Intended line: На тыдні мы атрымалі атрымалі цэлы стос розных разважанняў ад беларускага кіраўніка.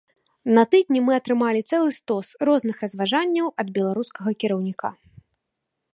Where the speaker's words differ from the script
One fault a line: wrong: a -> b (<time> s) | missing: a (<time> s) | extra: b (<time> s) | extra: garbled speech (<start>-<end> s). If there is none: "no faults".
missing: атрымалі (1.6 s)